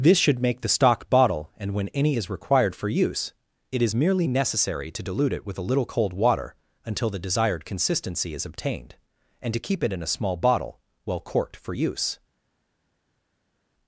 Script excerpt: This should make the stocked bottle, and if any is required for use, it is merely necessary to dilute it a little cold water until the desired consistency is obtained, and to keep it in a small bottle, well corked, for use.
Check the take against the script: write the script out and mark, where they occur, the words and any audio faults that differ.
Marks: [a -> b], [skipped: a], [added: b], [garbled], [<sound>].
This should make the [stocked -> stock] bottle, and [if -> when] any is required for use, it is merely necessary to dilute it [added: with] a little cold water until the desired consistency is obtained, and to keep it in a small bottle, well corked, for use.